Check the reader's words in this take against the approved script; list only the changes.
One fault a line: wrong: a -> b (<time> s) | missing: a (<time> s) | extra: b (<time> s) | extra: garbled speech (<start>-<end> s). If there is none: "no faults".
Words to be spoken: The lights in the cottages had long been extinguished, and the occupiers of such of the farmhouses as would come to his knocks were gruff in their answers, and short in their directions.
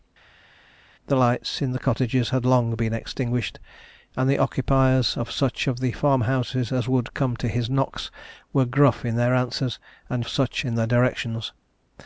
wrong: short -> such (10.3 s)